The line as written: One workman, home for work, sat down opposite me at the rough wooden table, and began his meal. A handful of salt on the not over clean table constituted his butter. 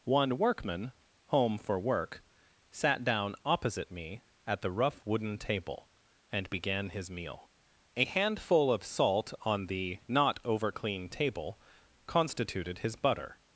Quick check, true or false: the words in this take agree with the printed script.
true